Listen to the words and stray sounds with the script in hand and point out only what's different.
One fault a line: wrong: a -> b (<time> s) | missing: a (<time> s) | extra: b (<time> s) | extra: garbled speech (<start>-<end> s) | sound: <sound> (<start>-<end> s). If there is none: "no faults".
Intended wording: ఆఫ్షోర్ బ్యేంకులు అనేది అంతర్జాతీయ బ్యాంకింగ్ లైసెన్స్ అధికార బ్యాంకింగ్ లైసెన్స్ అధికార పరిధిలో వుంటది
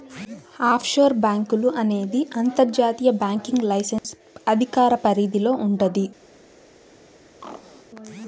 sound: dropout (4.0-4.0 s)
missing: బ్యాంకింగ్ లైసెన్స్ అధికార (4.9 s)
sound: throat clearing (7.4-7.9 s)